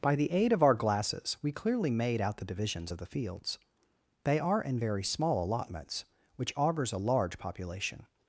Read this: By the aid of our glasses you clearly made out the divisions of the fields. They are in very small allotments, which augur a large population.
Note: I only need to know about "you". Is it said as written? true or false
false